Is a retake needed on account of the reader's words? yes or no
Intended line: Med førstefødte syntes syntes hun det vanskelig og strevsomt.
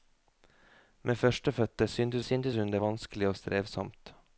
no